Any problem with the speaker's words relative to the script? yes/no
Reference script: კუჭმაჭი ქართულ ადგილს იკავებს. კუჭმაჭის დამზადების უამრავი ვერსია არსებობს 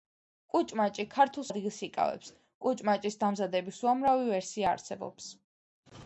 no